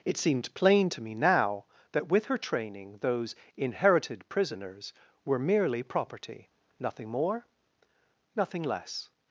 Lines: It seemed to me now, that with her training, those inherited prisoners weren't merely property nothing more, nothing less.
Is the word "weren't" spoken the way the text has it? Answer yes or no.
no